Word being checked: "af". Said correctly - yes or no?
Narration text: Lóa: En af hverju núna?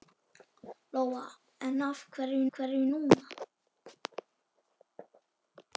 yes